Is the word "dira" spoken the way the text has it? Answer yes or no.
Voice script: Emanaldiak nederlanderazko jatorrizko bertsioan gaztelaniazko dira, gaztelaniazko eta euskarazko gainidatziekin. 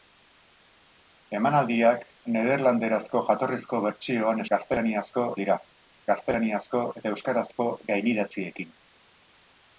yes